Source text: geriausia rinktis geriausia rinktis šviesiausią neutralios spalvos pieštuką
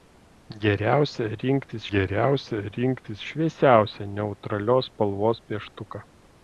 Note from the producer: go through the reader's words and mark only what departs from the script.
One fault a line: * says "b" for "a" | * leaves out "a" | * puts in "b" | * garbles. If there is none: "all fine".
all fine